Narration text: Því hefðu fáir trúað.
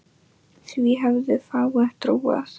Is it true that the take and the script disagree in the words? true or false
false